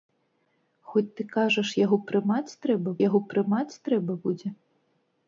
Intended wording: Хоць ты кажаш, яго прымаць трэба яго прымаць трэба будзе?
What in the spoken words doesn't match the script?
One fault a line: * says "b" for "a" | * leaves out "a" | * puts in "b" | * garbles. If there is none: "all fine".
all fine